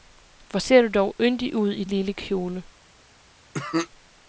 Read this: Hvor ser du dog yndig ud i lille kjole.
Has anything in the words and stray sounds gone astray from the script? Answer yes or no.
yes